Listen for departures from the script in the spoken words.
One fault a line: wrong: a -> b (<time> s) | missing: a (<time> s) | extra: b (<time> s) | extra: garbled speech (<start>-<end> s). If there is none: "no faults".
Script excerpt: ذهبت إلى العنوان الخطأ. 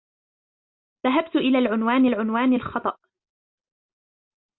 extra: العنوان (2.0 s)